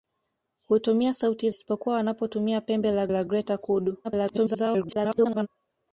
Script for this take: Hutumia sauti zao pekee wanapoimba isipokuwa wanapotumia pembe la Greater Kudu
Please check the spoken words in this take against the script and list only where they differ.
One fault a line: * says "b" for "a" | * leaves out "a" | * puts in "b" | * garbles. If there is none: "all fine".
* leaves out "zao pekee wanapoimba"
* puts in "la"
* garbles